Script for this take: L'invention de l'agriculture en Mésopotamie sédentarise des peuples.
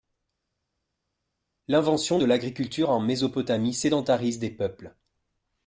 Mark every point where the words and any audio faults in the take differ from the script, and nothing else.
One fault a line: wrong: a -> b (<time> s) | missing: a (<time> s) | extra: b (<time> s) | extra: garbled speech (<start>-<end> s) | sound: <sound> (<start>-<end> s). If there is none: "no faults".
no faults